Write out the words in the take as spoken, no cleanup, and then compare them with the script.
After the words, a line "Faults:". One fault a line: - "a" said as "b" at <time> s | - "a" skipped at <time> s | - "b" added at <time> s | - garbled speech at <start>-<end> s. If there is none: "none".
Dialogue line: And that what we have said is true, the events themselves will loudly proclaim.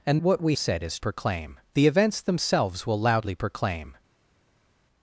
And what we said is proclaim, the events themselves will loudly proclaim.
Faults:
- "that" skipped at 0.2 s
- "have" skipped at 0.6 s
- "true" said as "proclaim" at 1.0 s